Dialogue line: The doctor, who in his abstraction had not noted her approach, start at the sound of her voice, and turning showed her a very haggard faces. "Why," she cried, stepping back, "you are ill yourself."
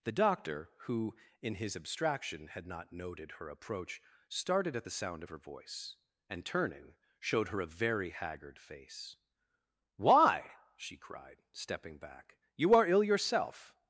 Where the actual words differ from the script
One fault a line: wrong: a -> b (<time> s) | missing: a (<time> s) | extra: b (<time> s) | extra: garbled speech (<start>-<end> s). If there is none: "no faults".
wrong: start -> started (4.3 s)
wrong: faces -> face (8.6 s)